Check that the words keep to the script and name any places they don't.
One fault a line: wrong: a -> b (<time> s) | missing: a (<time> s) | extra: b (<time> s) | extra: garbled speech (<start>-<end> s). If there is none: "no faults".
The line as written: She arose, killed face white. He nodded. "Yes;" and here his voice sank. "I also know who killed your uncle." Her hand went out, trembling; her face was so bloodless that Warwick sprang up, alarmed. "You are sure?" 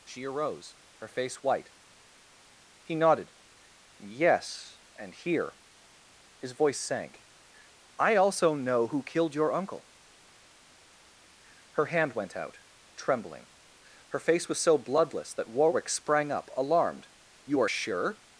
wrong: killed -> her (1.0 s)